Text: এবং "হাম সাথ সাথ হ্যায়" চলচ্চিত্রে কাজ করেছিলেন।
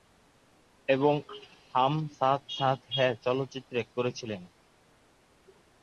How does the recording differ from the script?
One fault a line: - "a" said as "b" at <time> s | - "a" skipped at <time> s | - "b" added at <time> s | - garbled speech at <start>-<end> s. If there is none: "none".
- "কাজ" skipped at 3.8 s